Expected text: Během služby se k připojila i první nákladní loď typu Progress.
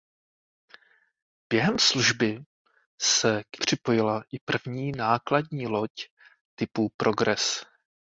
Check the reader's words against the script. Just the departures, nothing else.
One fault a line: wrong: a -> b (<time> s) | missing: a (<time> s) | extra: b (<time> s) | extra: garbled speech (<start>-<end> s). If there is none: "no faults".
no faults